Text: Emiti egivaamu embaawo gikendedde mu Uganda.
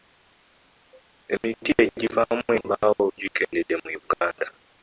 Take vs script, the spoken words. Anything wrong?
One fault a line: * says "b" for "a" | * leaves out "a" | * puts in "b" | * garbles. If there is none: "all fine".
all fine